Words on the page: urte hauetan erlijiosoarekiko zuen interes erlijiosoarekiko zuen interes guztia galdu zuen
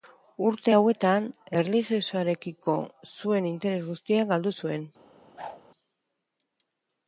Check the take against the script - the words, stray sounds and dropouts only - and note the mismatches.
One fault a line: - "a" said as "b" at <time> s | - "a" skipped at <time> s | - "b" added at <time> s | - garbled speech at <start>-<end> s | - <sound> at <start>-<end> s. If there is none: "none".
- "erlijiosoarekiko zuen interes" skipped at 3.8 s
- whoosh at 5.4-5.6 s